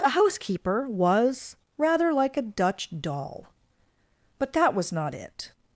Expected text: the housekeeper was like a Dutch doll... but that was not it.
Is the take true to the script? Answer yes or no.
no